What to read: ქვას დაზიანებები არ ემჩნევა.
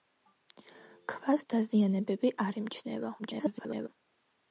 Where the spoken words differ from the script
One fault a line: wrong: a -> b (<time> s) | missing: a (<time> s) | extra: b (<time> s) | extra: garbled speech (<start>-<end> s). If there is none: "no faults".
extra: garbled speech (3.2-3.9 s)